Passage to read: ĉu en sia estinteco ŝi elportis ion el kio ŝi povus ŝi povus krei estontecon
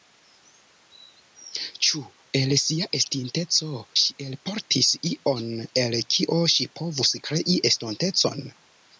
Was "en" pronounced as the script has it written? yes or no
no